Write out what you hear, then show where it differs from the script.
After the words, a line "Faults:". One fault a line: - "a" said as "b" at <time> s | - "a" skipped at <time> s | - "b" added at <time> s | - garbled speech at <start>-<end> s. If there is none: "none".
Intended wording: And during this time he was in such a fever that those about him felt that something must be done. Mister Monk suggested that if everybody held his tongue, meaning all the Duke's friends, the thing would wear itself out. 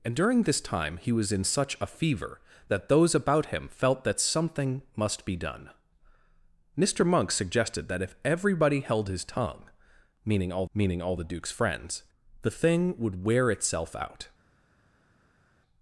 And during this time he was in such a fever that those about him felt that something must be done. Mister Monk suggested that if everybody held his tongue, meaning all meaning all the Duke's friends, the thing would wear itself out.
Faults:
- "meaning all" added at 10.7 s